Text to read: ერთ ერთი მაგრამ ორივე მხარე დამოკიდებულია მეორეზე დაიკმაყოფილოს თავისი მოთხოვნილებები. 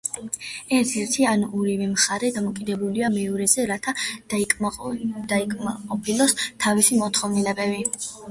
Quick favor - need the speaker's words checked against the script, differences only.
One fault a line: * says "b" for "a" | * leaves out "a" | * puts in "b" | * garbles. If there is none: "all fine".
* says "ან" for "მაგრამ"
* puts in "რათა"